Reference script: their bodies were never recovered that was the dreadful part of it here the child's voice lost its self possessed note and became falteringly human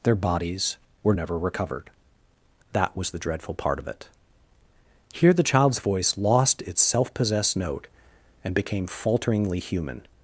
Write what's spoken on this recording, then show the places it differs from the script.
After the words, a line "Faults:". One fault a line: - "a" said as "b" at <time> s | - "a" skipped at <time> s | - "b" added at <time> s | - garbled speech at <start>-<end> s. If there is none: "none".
their bodies were never recovered that was the dreadful part of it here the child's voice lost its self possessed note and became falteringly human
Faults:
none